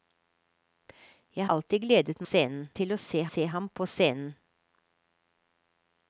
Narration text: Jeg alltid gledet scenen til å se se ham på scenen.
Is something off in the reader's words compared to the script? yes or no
no